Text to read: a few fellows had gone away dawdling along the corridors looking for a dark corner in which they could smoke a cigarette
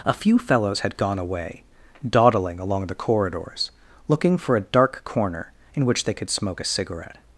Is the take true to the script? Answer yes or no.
yes